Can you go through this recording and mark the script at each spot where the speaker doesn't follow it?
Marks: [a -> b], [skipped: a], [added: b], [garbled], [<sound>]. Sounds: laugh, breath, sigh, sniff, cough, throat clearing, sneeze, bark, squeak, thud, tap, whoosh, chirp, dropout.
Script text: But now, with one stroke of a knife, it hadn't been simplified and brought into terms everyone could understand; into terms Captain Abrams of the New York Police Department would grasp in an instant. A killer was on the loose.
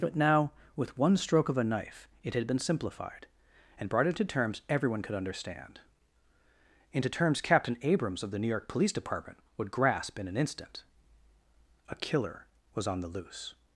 But now, with one stroke of a knife, it [hadn't -> had] been simplified and brought into terms everyone could understand; into terms Captain Abrams of the New York Police Department would grasp in an instant. A killer was on the loose.